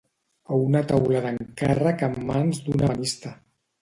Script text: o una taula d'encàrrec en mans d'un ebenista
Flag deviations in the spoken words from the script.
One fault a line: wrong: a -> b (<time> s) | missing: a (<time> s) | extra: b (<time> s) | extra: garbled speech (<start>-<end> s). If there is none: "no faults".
no faults